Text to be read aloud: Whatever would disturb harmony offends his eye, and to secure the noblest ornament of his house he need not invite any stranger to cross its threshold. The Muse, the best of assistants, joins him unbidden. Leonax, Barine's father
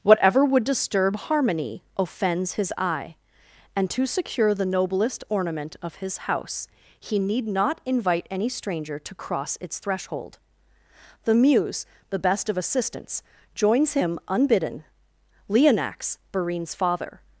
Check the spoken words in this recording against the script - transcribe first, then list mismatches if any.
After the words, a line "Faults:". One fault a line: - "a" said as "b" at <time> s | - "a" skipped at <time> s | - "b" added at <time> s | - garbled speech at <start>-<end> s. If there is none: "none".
Whatever would disturb harmony offends his eye, and to secure the noblest ornament of his house he need not invite any stranger to cross its threshold. The Muse, the best of assistants, joins him unbidden. Leonax, Barine's father
Faults:
none